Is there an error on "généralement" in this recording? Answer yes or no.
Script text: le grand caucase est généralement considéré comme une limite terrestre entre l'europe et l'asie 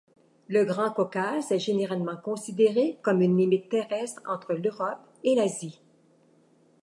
no